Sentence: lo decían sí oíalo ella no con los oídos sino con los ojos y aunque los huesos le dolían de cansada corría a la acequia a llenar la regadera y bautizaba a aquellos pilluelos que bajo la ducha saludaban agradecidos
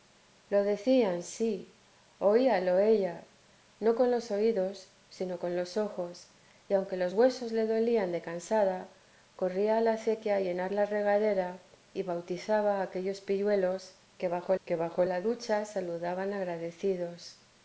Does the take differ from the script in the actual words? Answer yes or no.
yes